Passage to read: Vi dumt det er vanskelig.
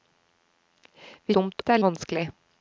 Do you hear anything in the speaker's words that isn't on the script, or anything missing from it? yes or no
no